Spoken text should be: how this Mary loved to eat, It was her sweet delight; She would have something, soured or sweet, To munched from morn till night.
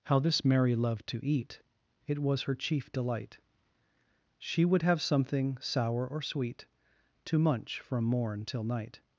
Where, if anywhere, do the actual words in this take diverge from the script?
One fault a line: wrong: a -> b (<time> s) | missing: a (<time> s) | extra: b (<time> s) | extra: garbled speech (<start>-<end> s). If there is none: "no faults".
wrong: sweet -> chief (2.5 s)
wrong: soured -> sour (5.6 s)
wrong: munched -> munch (7.4 s)